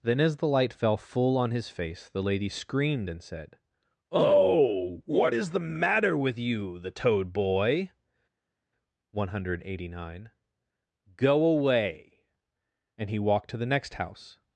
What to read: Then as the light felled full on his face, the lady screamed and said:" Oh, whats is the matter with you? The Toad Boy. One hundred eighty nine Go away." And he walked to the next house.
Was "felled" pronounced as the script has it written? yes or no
no